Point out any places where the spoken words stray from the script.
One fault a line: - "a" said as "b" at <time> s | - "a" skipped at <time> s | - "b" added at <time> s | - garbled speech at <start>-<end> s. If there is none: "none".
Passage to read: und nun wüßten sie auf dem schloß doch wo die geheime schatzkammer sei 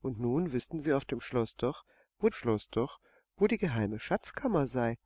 - "schloß doch wo" added at 2.3 s